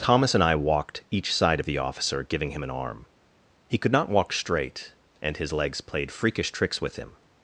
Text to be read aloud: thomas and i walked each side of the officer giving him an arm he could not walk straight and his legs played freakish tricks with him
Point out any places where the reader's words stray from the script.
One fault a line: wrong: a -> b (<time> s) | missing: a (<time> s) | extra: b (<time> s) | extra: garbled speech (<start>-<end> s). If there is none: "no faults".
no faults